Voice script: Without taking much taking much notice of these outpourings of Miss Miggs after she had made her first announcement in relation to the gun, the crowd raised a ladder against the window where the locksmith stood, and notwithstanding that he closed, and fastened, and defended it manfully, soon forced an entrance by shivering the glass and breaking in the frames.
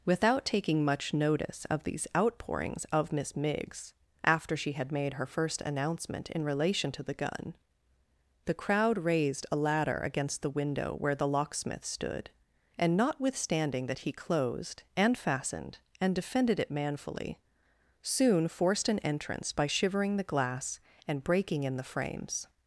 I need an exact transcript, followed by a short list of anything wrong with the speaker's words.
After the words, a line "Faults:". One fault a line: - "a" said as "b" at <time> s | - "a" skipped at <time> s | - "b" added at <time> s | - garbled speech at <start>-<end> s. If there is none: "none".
Without taking much notice of these outpourings of Miss Miggs after she had made her first announcement in relation to the gun, the crowd raised a ladder against the window where the locksmith stood, and notwithstanding that he closed, and fastened, and defended it manfully, soon forced an entrance by shivering the glass and breaking in the frames.
Faults:
- "taking much" skipped at 1.1 s